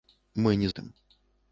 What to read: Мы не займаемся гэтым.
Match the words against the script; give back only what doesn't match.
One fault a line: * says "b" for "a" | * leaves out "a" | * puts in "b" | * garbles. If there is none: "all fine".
* leaves out "займаемся"